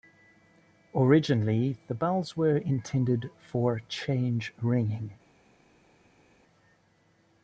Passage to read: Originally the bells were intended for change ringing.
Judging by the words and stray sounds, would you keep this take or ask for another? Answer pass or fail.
pass